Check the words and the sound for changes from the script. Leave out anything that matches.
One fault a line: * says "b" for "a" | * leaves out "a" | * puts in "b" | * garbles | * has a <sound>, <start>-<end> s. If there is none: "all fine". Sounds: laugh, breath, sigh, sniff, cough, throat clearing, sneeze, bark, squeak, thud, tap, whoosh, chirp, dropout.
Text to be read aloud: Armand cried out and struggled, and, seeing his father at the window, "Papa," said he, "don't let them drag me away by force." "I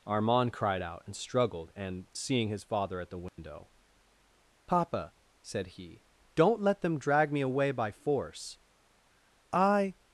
* has a dropout, 3.3-3.4 s